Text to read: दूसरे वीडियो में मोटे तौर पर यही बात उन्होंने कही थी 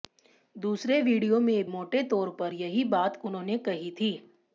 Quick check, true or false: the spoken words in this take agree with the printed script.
true